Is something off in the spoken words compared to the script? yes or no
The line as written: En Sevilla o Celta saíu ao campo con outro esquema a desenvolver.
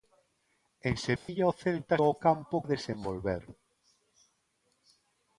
yes